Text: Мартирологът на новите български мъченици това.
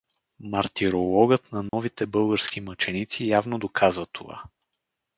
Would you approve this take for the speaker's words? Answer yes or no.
no